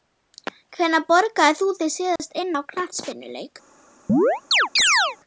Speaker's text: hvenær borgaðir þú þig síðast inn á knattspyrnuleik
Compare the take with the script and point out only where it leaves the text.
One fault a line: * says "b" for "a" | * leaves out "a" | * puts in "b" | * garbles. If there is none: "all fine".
all fine